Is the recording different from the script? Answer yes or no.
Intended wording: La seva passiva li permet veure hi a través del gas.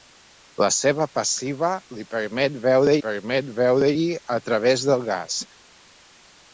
yes